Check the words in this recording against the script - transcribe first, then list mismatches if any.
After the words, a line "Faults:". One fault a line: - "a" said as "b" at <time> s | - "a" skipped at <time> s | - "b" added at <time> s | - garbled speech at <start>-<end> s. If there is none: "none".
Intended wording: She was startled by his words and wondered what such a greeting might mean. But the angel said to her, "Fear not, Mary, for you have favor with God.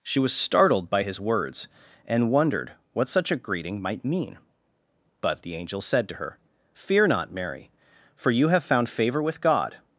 She was startled by his words and wondered what such a greeting might mean. But the angel said to her, "Fear not, Mary, for you have found favor with God.
Faults:
- "found" added at 8.6 s